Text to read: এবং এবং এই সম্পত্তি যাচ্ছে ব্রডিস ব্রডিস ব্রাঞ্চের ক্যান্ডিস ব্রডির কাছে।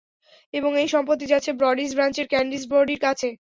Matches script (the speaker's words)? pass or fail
fail